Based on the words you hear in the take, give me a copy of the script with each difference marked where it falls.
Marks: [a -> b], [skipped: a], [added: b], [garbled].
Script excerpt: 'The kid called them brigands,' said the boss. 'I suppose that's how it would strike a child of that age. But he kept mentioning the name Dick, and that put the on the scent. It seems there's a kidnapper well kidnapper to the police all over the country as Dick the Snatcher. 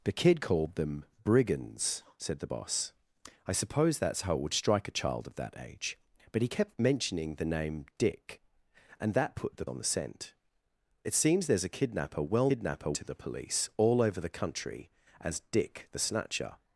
'The kid called them brigands,' said the boss. 'I suppose that's how it would strike a child of that age. But he kept mentioning the name Dick, and that put the on the scent. It seems there's a kidnapper well kidnapper to the police all over the country as Dick the Snatcher.